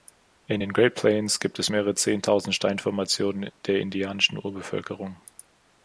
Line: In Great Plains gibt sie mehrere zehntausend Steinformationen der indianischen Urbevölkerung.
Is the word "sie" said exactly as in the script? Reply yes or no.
no